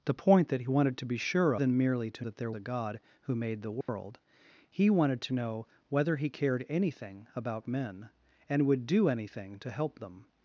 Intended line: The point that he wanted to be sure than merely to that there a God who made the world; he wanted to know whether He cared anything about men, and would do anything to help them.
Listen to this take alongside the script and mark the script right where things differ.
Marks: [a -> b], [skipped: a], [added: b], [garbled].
The point that he wanted to be sure than merely to that there a God who made the world; he wanted to know whether He cared anything about men, and would do anything to help them.